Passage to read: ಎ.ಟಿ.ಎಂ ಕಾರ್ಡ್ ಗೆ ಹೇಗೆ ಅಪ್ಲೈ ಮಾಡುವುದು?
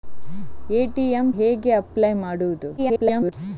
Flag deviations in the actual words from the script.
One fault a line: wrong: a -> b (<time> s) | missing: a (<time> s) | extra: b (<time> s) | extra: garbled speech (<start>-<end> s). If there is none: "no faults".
missing: ಕಾರ್ಡ್ ಗೆ (1.3 s)
extra: garbled speech (2.8-3.3 s)